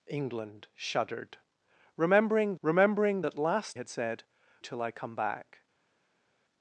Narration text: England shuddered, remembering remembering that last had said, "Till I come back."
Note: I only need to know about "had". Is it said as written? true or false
true